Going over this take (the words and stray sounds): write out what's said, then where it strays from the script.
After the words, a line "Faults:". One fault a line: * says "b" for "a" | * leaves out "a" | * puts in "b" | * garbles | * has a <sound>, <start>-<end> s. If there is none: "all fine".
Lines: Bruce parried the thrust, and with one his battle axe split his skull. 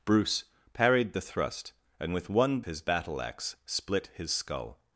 Bruce parried the thrust, and with one his battle axe split his skull.
Faults:
all fine